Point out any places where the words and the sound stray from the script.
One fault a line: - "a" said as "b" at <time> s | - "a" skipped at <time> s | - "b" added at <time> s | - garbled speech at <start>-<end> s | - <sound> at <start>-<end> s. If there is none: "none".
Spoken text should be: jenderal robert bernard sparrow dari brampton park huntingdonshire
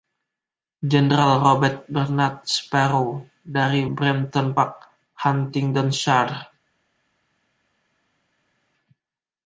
none